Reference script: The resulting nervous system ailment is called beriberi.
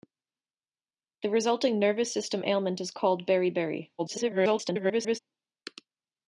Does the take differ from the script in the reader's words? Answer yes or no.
yes